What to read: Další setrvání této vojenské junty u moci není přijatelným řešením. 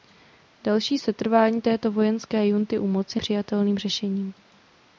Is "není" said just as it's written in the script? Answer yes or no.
no